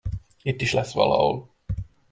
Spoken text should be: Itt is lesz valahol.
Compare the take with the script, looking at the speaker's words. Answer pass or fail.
pass